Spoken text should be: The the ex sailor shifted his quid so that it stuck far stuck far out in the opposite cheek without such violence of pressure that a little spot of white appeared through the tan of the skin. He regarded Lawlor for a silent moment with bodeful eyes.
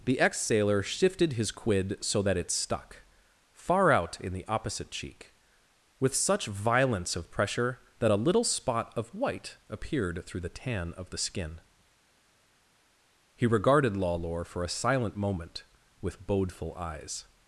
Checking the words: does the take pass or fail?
fail